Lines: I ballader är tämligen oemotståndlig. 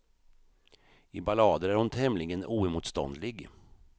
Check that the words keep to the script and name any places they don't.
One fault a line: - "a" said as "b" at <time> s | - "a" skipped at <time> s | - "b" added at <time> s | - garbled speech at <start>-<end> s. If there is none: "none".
- "hon" added at 1.8 s